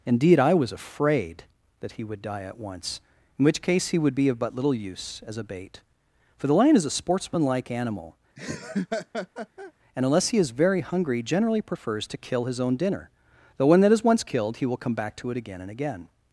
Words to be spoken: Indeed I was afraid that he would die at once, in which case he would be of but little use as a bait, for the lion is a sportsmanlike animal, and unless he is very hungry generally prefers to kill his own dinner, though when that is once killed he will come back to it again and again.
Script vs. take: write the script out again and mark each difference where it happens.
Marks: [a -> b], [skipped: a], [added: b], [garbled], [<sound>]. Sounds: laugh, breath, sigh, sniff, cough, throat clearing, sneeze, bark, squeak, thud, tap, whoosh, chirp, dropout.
Indeed I was afraid that he would die at once, in which case he would be of but little use as a bait, for the lion is a sportsmanlike animal, [laugh] and unless he is very hungry generally prefers to kill his own dinner, though when that is once killed he will come back to it again and again.